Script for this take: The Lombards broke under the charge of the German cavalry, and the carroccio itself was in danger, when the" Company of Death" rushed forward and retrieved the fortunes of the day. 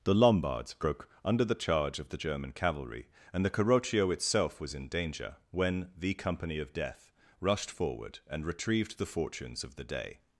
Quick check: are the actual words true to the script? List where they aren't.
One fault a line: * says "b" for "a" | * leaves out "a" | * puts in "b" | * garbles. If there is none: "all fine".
all fine